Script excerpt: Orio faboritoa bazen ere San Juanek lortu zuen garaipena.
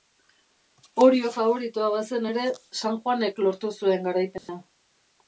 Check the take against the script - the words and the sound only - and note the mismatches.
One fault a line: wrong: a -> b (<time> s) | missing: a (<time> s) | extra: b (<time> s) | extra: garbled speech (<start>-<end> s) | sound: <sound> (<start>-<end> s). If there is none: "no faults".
sound: dropout (4.4-4.5 s)